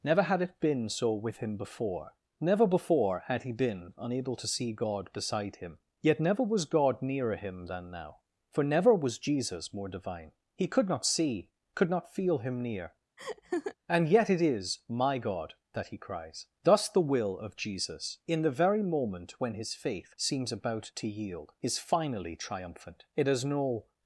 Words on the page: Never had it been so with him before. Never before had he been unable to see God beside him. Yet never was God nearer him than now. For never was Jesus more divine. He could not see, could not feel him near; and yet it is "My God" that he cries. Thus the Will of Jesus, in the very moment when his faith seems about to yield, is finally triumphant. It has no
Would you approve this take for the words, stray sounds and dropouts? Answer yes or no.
no